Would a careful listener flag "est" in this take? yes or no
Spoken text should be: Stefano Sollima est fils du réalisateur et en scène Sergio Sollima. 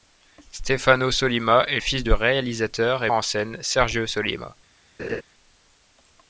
no